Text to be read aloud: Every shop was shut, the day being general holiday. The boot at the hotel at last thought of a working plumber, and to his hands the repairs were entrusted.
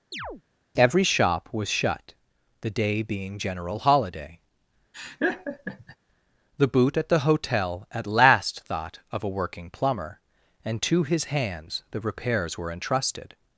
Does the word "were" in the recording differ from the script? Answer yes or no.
no